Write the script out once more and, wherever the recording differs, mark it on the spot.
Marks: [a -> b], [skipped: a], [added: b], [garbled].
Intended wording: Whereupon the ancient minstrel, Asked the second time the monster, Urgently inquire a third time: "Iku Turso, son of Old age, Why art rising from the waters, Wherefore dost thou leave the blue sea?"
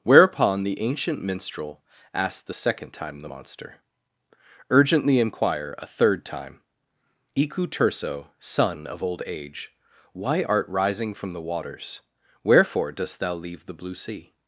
Whereupon the ancient minstrel, Asked the second time the monster, Urgently inquire a third time: "Iku Turso, son of Old age, Why art rising from the waters, Wherefore dost thou leave the blue sea?"